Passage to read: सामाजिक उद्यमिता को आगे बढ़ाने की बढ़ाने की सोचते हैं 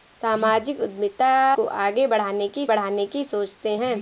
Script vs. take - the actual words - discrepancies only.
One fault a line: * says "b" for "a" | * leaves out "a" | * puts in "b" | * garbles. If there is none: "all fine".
all fine